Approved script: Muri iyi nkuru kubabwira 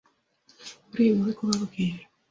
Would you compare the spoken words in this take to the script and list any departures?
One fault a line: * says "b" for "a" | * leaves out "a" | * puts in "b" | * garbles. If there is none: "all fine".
all fine